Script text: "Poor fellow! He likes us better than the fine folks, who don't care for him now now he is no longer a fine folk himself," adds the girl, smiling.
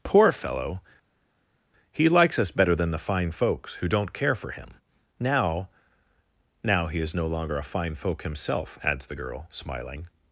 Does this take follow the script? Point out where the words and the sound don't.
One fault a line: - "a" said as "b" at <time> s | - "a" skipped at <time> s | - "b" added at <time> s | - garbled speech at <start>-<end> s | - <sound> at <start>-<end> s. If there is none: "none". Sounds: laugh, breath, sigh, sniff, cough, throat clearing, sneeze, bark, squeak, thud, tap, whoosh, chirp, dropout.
none